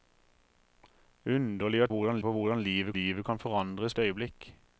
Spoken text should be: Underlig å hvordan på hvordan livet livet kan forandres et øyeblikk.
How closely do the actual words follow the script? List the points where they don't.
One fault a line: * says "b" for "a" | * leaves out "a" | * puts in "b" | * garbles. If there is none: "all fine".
all fine